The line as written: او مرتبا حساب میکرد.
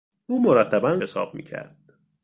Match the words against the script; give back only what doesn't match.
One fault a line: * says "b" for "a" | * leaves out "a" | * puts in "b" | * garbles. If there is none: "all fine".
all fine